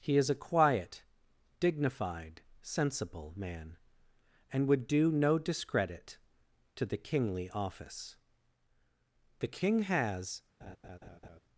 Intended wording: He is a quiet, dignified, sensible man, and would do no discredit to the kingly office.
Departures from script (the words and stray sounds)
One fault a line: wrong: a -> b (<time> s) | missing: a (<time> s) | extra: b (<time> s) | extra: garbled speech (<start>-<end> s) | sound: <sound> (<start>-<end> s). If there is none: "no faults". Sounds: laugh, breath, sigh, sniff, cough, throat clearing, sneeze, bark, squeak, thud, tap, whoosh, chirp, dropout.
extra: The King has (9.4 s)
sound: laugh (10.6-11.4 s)